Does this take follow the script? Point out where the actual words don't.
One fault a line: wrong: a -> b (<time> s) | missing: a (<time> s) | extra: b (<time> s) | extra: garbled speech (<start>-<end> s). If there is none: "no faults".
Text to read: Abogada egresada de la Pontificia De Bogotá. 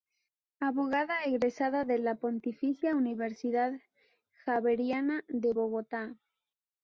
extra: Universidad Javeriana (3.0 s)